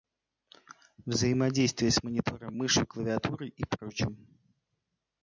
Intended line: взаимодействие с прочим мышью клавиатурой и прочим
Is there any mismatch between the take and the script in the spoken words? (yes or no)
yes